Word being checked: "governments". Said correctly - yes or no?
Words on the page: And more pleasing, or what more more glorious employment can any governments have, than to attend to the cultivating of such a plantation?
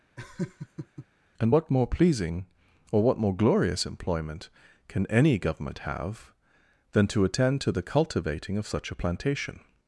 no